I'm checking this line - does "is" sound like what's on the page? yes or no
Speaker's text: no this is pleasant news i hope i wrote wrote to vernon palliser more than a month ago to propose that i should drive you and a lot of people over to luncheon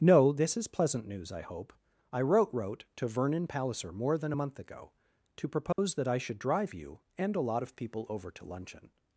yes